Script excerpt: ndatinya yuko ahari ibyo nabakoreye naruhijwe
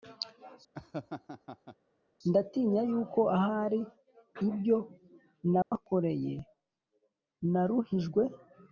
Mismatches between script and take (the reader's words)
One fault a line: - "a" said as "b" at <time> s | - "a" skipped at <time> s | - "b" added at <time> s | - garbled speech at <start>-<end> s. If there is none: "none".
none